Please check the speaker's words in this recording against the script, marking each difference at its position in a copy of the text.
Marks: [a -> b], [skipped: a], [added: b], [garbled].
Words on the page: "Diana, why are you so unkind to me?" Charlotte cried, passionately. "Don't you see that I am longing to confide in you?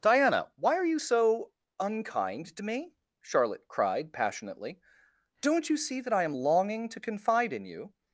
"Diana, why are you so unkind to me?" Charlotte cried, passionately. "Don't you see that I am longing to confide in you?